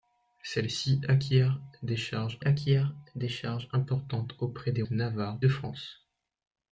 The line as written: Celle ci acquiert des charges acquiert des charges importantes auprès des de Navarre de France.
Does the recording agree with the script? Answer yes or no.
yes